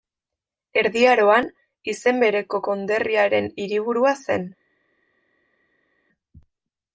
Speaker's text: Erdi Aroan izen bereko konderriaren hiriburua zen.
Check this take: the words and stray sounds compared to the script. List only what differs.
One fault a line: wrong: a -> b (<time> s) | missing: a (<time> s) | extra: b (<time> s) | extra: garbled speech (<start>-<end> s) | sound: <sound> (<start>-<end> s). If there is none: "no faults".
no faults